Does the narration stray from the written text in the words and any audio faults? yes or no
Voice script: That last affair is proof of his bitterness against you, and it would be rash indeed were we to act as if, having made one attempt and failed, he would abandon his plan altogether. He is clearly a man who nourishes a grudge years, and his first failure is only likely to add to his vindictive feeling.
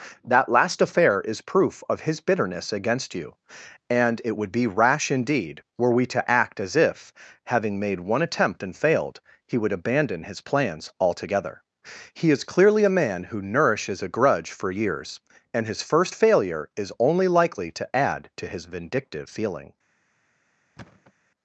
yes